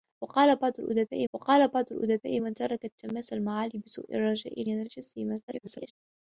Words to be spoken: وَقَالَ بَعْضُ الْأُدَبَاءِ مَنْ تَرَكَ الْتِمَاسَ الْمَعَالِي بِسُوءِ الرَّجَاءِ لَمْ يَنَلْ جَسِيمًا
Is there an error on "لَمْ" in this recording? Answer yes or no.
yes